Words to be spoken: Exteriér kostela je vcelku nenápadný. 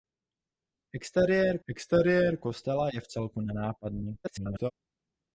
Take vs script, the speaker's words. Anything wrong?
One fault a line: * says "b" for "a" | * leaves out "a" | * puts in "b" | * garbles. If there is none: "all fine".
* puts in "exteriér"
* garbles